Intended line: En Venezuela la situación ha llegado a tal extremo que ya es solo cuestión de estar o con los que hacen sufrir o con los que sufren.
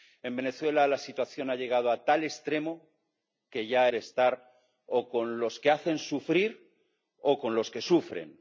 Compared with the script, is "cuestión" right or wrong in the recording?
wrong